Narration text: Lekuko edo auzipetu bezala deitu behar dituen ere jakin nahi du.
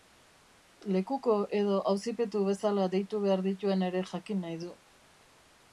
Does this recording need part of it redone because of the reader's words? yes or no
no